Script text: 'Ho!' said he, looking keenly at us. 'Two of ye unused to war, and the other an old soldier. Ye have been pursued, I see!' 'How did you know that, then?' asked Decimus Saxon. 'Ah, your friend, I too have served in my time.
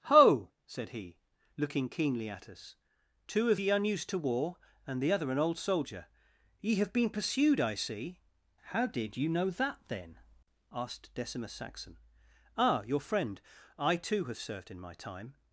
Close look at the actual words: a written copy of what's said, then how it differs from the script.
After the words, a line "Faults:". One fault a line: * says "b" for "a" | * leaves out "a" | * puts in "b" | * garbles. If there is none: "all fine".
'Ho!' said he, looking keenly at us. 'Two of ye unused to war, and the other an old soldier. Ye have been pursued, I see!' 'How did you know that, then?' asked Decimus Saxon. 'Ah, your friend, I too have served in my time.
Faults:
all fine